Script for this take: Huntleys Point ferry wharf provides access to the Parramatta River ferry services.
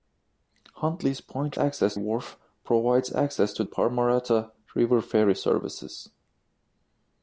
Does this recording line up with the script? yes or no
no